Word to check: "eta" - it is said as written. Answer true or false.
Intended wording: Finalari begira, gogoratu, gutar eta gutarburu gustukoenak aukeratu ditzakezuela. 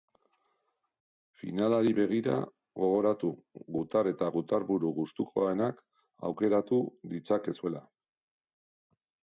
true